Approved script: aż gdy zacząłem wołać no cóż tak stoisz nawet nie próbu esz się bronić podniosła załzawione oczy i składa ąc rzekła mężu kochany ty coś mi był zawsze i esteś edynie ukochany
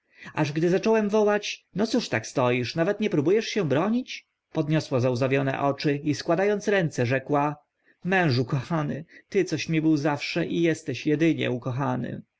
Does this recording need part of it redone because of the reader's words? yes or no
yes